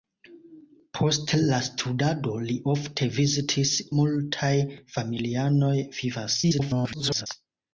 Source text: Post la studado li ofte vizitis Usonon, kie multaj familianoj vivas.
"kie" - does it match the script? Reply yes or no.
no